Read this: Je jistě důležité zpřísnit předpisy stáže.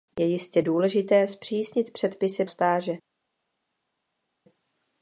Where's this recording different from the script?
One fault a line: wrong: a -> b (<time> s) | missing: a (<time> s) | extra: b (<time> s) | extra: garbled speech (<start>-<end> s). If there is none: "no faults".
no faults